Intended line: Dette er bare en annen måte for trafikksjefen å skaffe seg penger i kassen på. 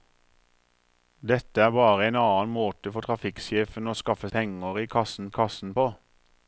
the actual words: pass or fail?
fail